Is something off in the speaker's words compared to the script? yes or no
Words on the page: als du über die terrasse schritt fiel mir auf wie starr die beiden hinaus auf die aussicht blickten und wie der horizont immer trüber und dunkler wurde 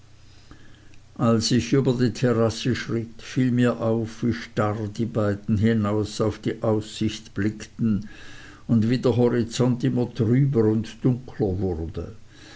yes